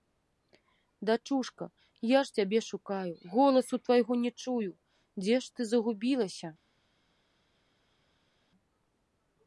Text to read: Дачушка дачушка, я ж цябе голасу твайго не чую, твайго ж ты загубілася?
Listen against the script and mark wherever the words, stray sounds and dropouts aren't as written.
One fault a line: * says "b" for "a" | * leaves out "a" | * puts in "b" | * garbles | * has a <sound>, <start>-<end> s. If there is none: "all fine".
* leaves out "дачушка"
* puts in "шукаю"
* says "дзе" for "твайго"